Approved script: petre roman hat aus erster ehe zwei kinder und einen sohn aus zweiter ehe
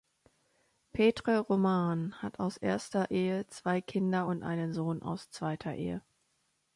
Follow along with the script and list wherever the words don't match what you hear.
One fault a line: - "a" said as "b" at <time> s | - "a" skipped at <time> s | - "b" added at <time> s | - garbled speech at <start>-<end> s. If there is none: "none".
none